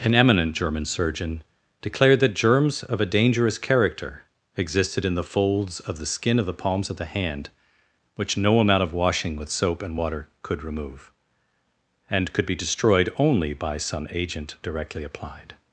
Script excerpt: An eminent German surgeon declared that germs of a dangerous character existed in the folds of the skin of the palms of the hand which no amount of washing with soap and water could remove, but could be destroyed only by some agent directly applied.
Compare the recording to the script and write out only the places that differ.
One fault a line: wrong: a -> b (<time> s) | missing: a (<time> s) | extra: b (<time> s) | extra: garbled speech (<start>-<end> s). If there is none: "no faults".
wrong: but -> and (12.1 s)